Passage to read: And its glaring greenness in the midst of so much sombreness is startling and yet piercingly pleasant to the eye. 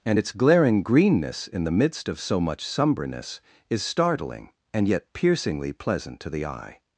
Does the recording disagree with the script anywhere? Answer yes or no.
no